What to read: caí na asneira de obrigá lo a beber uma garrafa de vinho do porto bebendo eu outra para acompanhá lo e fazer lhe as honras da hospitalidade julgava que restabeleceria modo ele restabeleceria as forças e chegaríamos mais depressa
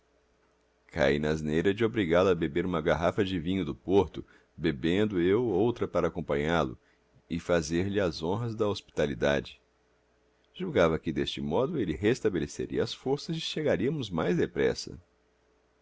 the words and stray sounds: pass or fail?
fail